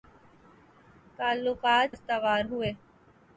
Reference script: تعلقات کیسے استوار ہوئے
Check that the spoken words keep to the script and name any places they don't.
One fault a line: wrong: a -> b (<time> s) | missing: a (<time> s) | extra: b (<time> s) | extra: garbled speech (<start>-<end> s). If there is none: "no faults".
missing: کیسے (1.9 s)